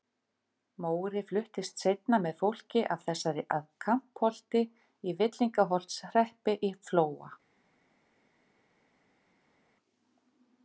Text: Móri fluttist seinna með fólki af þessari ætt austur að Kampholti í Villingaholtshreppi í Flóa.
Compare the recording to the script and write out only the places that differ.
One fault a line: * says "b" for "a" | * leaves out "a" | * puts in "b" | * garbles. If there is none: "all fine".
* leaves out "ætt austur"